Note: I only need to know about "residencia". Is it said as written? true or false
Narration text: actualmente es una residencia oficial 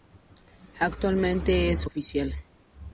false